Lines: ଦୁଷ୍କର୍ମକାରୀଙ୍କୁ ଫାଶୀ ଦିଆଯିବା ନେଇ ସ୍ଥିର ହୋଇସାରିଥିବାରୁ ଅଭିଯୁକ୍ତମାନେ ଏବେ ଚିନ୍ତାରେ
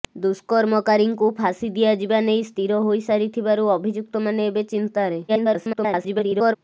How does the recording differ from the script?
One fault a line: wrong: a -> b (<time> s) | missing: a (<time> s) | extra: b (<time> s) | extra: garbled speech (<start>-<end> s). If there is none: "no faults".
extra: garbled speech (5.3-6.6 s)